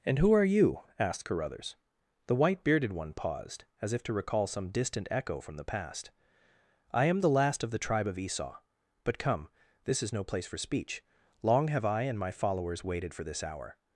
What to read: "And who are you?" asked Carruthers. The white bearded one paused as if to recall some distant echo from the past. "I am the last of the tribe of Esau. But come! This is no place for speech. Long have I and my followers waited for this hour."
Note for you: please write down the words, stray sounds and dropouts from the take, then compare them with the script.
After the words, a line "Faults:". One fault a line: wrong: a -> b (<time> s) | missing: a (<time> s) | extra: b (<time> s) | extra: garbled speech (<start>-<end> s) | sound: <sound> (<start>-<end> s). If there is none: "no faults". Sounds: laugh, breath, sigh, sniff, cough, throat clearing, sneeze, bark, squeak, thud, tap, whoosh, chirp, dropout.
"And who are you?" asked Carruthers. The white bearded one paused as if to recall some distant echo from the past. "I am the last of the tribe of Esau. But come! This is no place for speech. Long have I and my followers waited for this hour."
Faults:
no faults